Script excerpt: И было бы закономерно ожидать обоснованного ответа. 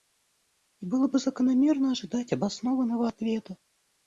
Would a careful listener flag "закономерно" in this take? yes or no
no